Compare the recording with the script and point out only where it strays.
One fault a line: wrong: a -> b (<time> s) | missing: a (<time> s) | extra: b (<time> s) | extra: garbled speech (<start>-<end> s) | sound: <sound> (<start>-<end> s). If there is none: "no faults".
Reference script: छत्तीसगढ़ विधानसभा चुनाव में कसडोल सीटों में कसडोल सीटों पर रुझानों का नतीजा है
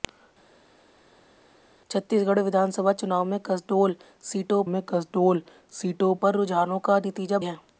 no faults